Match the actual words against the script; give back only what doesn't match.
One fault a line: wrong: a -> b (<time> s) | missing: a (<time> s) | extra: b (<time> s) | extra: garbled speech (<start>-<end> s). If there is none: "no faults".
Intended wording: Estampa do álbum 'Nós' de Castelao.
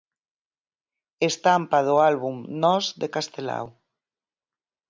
no faults